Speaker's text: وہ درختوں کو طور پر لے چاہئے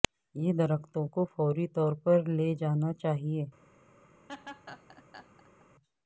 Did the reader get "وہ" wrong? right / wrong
wrong